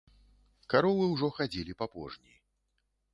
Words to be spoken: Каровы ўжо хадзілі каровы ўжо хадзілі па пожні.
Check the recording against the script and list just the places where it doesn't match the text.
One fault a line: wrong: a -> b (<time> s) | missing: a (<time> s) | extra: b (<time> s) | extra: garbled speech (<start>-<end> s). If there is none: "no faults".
missing: каровы ўжо хадзілі (1.8 s)